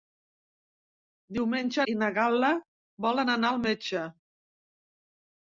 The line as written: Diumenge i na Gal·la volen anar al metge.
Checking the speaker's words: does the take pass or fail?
pass